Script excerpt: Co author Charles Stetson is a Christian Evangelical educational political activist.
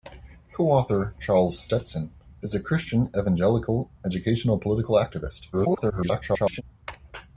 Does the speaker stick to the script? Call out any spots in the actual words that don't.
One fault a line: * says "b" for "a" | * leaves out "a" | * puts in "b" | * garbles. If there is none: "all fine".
* garbles